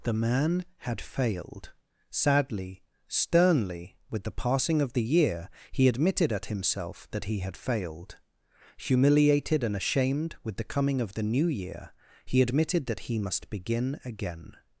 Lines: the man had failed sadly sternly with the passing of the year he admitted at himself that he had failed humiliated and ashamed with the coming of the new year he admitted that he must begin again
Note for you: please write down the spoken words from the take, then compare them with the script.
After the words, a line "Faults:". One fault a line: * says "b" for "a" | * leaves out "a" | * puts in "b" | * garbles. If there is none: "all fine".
the man had failed sadly sternly with the passing of the year he admitted at himself that he had failed humiliated and ashamed with the coming of the new year he admitted that he must begin again
Faults:
all fine